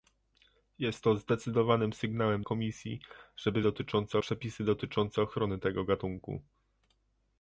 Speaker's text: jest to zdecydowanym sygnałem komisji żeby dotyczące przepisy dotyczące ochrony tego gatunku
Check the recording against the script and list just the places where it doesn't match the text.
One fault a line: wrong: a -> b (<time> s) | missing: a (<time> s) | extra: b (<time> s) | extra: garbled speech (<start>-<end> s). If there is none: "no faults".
no faults